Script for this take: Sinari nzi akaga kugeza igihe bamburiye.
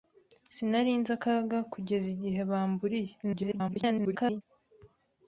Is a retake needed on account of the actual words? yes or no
yes